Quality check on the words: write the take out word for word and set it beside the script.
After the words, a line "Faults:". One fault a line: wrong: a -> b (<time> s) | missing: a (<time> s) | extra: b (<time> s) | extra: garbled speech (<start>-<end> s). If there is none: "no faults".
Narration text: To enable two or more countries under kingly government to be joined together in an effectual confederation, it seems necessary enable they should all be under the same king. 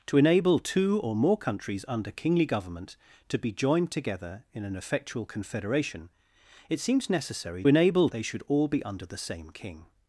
To enable two or more countries under kingly government to be joined together in an effectual confederation, it seems necessary enable they should all be under the same king.
Faults:
no faults